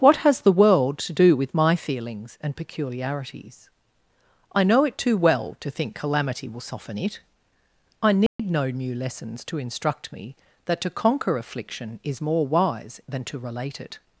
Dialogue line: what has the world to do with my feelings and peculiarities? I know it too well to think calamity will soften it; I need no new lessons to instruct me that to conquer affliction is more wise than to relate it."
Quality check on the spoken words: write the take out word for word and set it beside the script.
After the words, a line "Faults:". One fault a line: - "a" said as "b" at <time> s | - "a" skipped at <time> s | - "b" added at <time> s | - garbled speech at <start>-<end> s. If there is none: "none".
what has the world to do with my feelings and peculiarities? I know it too well to think calamity will soften it; I need no new lessons to instruct me that to conquer affliction is more wise than to relate it."
Faults:
none